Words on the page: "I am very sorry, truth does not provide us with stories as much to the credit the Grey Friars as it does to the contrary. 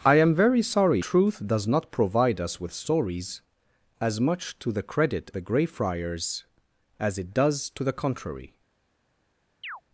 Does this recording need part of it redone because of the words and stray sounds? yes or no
yes